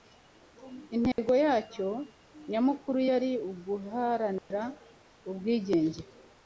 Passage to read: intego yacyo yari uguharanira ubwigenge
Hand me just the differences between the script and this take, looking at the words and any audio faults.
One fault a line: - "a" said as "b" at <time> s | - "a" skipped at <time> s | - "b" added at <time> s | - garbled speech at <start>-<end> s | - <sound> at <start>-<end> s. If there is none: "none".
- dropout at 1.1-1.2 s
- "nyamukuru" added at 2.5 s
- dropout at 4.4-4.5 s